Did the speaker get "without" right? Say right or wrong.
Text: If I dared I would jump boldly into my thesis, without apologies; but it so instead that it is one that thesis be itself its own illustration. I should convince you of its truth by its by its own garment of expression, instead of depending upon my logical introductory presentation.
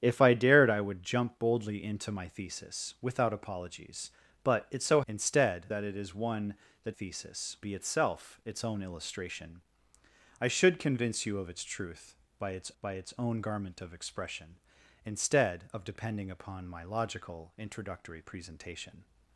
right